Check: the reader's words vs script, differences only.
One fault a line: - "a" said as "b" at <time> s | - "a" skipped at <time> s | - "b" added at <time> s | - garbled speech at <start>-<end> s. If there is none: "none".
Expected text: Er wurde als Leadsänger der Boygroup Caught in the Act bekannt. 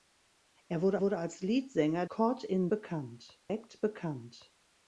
- "wurde" added at 1.0 s
- "der Boygroup" skipped at 2.0 s
- "the" said as "bekannt" at 2.7 s